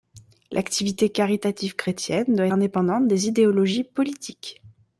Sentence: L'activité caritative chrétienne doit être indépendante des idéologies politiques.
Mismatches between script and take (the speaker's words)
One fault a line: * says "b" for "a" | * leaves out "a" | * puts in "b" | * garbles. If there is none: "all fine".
* leaves out "être"